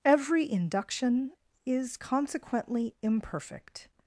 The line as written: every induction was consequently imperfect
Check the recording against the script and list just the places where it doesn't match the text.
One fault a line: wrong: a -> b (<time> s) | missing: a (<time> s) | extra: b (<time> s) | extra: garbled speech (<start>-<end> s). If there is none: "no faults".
wrong: was -> is (1.6 s)